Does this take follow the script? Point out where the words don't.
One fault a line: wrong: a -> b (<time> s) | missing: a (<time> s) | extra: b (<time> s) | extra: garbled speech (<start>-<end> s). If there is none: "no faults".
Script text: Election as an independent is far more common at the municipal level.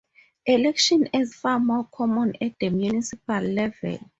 missing: an independent is (1.4 s)